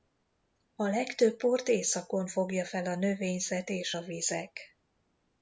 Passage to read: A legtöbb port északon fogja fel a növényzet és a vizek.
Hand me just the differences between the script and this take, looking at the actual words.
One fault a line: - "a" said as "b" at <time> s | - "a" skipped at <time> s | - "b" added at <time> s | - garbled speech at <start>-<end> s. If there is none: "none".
none